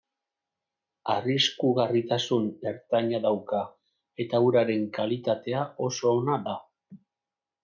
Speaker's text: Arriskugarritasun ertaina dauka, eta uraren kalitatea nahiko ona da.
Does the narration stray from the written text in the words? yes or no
yes